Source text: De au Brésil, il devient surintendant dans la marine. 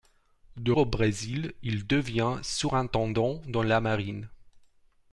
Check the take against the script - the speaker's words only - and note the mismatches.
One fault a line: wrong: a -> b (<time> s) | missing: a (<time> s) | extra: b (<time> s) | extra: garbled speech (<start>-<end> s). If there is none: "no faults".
no faults